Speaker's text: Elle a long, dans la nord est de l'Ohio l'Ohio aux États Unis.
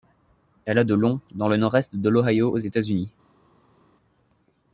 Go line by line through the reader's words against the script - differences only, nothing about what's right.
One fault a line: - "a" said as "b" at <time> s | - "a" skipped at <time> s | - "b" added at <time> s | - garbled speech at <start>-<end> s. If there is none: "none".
- "de" added at 0.8 s
- "la" said as "le" at 1.5 s
- "l'Ohio" skipped at 2.5 s